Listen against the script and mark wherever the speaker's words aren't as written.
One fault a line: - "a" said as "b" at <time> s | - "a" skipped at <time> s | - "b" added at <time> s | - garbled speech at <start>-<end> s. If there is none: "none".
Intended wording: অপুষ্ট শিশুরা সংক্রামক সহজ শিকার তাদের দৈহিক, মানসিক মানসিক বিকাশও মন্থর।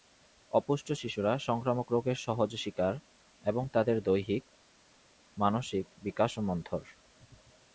- "রোগের" added at 1.9 s
- "এবং" added at 3.4 s
- "মানসিক" skipped at 5.9 s